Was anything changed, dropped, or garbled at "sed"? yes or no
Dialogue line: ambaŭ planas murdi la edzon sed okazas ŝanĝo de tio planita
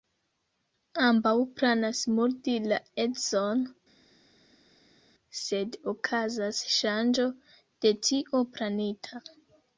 no